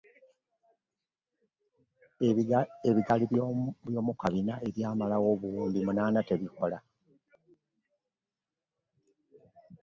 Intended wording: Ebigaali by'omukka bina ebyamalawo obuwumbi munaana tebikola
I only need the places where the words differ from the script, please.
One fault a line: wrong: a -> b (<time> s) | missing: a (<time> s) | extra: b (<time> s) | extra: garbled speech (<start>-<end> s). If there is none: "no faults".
no faults